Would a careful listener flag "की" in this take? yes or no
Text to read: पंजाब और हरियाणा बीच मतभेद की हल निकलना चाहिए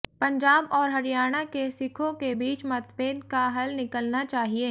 yes